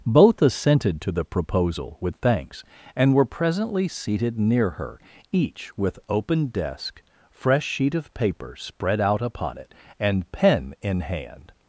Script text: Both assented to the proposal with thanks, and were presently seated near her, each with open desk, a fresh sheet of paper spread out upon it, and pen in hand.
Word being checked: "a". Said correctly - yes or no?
no